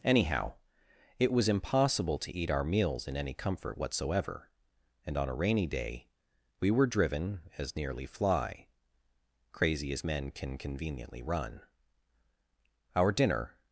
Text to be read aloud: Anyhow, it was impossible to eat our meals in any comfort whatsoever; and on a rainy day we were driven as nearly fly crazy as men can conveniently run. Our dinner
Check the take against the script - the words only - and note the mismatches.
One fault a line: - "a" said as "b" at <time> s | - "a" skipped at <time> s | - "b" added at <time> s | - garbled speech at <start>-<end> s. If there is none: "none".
none